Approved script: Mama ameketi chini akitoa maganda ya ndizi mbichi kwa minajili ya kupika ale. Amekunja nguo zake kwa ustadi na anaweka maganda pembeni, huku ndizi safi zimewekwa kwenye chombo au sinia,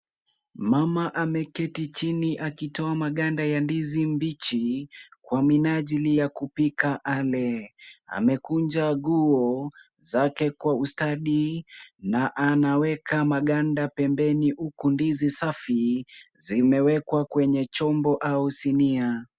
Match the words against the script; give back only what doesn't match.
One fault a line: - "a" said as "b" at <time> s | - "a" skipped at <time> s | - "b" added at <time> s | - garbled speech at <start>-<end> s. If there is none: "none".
none